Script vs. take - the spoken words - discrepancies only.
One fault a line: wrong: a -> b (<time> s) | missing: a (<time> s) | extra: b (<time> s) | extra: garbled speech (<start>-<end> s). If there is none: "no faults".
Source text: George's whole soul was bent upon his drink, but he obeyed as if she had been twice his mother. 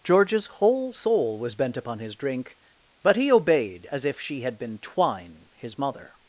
wrong: twice -> twine (4.8 s)